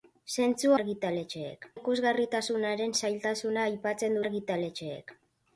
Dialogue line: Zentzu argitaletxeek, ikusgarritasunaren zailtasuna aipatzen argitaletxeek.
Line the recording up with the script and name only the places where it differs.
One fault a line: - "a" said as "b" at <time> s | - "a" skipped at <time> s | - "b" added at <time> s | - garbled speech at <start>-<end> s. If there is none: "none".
none